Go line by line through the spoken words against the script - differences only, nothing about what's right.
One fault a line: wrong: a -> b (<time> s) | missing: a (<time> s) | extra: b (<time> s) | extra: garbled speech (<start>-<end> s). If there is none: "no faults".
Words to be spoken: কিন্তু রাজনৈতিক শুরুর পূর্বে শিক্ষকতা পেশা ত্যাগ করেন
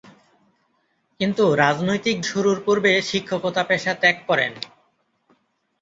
no faults